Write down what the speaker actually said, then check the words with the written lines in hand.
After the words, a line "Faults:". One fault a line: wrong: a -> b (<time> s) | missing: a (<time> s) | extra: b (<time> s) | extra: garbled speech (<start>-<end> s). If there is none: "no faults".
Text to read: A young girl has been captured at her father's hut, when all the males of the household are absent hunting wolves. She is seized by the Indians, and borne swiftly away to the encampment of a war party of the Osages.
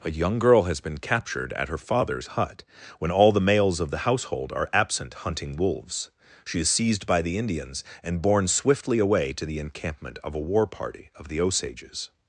A young girl has been captured at her father's hut, when all the males of the household are absent hunting wolves. She is seized by the Indians, and borne swiftly away to the encampment of a war party of the Osages.
Faults:
no faults